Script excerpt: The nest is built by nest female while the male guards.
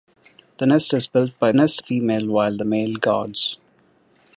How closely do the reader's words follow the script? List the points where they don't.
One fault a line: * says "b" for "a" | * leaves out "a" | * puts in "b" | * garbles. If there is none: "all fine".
all fine